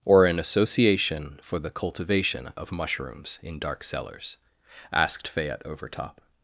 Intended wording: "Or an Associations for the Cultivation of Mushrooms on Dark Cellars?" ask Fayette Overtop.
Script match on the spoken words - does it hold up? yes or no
no